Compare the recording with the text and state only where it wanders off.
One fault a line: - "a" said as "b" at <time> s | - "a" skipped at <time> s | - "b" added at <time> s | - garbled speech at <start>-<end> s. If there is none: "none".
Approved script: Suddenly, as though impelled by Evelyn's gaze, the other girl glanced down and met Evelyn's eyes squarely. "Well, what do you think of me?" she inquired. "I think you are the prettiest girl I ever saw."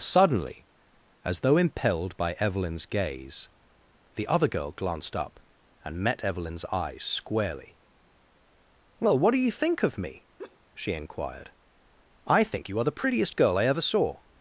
- "down" said as "up" at 5.2 s